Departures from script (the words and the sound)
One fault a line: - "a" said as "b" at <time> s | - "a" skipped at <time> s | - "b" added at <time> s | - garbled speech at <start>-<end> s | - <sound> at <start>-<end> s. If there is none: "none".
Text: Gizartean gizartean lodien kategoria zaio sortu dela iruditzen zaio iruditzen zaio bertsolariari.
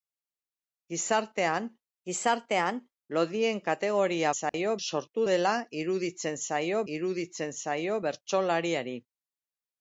- dropout at 4.5-4.5 s